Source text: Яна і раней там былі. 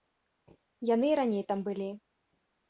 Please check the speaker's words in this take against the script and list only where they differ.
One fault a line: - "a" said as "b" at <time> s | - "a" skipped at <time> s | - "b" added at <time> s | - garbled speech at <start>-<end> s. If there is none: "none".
- "Яна" said as "Яны" at 0.9 s